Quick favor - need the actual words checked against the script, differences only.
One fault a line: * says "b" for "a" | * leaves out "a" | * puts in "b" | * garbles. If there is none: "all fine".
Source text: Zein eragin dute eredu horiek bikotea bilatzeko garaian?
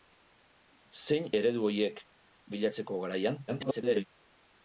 * leaves out "eragin dute"
* leaves out "bikotea"
* garbles